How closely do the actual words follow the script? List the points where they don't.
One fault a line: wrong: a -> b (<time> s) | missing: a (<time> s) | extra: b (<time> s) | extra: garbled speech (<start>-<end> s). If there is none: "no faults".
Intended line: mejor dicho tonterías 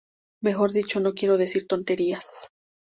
extra: no quiero decir (1.0 s)